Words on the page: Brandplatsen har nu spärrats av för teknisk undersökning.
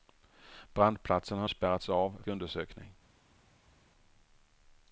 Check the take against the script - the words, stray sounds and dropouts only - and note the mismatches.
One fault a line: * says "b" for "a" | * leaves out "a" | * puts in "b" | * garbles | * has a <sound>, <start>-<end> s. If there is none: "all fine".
* leaves out "nu"
* leaves out "för teknisk"